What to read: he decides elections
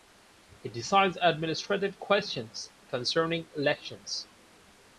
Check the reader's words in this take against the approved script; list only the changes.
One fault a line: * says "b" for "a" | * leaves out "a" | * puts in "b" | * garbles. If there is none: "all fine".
* puts in "administrative questions concerning"